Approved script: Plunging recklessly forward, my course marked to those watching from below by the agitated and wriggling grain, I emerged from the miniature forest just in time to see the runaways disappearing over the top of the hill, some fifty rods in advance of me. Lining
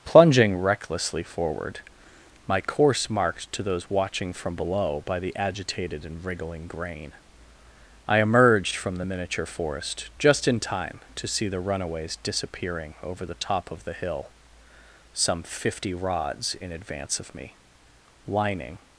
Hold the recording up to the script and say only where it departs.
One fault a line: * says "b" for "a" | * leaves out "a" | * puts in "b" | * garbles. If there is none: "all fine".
all fine